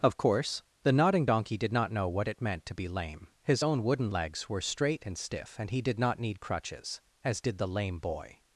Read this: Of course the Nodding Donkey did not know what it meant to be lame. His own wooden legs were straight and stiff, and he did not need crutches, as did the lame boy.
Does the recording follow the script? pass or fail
pass